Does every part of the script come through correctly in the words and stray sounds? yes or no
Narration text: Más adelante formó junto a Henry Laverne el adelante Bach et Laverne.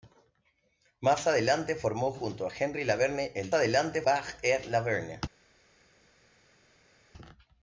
yes